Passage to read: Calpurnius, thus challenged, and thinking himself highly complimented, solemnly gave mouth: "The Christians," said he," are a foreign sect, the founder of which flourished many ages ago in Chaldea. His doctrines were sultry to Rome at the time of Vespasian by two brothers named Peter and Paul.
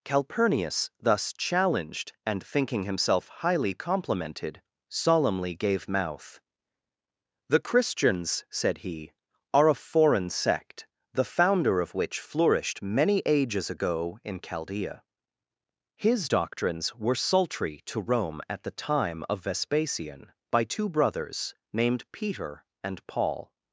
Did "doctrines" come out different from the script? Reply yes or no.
no